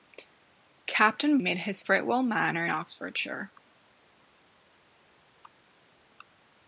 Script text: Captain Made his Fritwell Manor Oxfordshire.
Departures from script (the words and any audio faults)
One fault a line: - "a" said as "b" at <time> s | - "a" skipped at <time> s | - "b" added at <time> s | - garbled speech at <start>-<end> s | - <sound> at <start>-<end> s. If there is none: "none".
none